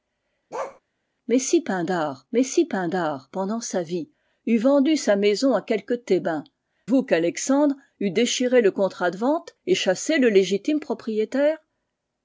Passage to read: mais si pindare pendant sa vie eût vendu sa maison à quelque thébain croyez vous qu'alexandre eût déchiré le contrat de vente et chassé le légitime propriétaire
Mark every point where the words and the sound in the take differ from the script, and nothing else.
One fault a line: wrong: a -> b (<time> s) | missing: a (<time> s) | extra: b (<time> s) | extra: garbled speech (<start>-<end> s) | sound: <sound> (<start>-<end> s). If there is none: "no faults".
sound: bark (0.5-0.8 s)
extra: mais si pindare (2.3 s)
missing: croyez (6.4 s)